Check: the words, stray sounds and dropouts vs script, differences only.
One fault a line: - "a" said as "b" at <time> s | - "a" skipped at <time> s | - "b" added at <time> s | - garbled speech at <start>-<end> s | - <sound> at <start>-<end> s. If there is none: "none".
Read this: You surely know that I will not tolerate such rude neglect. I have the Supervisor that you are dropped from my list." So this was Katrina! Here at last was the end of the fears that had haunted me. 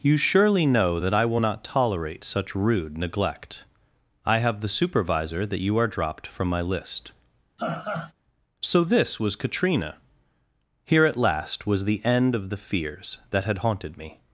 - laugh at 7.6-8.1 s